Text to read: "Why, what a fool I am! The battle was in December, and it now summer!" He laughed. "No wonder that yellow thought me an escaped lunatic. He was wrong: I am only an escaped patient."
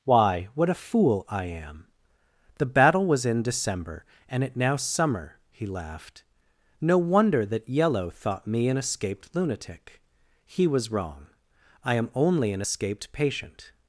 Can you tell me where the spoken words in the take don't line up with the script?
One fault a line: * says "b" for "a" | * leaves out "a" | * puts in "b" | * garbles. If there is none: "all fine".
all fine